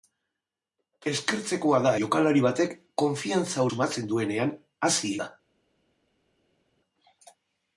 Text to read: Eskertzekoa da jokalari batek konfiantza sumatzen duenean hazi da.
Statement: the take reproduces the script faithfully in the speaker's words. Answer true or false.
true